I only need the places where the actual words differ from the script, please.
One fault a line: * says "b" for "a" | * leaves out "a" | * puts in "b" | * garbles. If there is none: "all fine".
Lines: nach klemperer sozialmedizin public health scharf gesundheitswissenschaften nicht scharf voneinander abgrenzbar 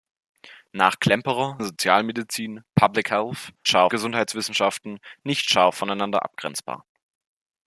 all fine